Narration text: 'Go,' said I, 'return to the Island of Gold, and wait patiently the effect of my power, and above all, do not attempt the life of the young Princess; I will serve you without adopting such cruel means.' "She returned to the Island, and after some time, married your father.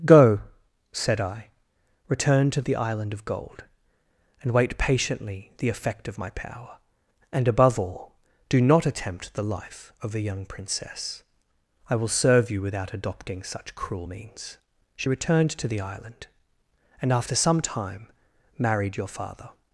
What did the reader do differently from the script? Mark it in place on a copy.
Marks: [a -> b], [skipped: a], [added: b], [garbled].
'Go,' said I, 'return to the Island of Gold, and wait patiently the effect of my power, and above all, do not attempt the life of [the -> a] young Princess; I will serve you without adopting such cruel means.' "She returned to the Island, and after some time, married your father.